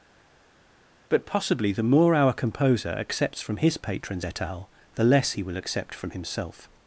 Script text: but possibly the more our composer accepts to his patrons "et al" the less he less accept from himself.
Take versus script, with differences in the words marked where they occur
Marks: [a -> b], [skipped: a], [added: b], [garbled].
but possibly the more our composer accepts [to -> from] his patrons "et al" the less he [less -> will] accept from himself.